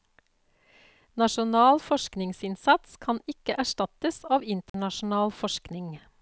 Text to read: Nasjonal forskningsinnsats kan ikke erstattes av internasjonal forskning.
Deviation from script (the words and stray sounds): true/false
true